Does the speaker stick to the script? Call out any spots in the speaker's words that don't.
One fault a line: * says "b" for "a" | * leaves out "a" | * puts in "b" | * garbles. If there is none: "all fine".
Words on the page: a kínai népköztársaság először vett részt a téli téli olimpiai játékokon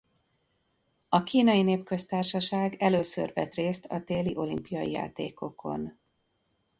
* leaves out "téli"